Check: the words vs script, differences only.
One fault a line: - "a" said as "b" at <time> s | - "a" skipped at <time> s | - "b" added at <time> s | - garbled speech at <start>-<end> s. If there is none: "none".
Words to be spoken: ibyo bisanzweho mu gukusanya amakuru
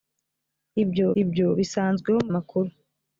- "ibyo" added at 1.2 s
- "gukusanya" skipped at 2.3 s